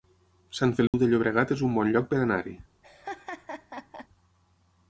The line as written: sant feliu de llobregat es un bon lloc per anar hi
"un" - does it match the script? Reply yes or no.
yes